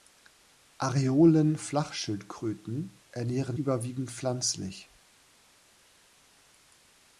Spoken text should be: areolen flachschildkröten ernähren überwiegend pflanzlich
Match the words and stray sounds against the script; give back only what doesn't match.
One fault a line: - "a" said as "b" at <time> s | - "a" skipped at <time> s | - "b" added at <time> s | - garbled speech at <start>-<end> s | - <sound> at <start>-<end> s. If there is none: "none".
none